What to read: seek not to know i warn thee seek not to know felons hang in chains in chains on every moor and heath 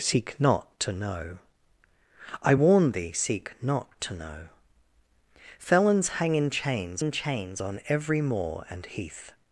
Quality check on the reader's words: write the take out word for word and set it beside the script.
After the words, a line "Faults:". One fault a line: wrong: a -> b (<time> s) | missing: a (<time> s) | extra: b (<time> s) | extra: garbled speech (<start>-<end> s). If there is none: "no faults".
seek not to know i warn thee seek not to know felons hang in chains in chains on every moor and heath
Faults:
no faults